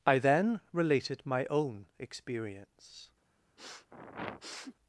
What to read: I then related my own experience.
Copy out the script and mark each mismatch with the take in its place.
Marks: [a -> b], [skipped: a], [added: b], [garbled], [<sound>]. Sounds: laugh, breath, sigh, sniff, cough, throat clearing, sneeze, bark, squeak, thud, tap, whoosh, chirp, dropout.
I then related my own experience. [sniff]